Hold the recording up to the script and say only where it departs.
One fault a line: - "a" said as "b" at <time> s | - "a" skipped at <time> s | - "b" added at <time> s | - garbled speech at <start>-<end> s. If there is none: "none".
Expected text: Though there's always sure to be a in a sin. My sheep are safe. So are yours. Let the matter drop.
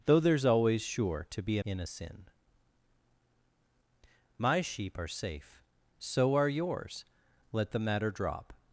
none